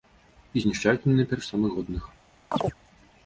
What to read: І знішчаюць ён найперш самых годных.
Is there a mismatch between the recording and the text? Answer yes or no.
yes